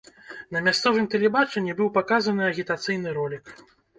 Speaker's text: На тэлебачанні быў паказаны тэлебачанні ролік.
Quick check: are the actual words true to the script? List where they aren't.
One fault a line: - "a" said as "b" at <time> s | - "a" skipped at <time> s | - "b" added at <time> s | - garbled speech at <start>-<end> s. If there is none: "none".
- "мясцовым" added at 0.7 s
- "тэлебачанні" said as "агітацыйны" at 2.5 s